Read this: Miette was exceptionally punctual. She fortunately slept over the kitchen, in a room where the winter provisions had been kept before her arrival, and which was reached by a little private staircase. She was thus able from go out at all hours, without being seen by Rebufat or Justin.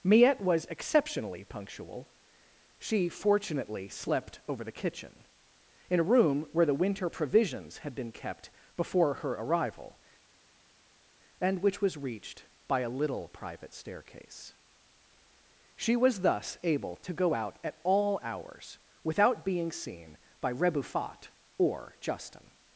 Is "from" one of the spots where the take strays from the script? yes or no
yes